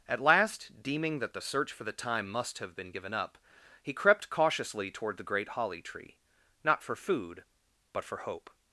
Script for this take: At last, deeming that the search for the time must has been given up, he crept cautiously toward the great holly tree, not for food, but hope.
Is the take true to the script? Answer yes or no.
no